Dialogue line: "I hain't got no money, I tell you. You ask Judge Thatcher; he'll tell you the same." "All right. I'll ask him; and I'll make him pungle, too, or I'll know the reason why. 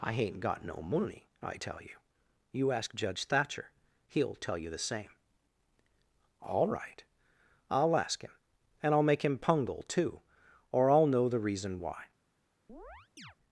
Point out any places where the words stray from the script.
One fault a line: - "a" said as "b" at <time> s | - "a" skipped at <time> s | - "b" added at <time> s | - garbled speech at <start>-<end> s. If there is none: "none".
none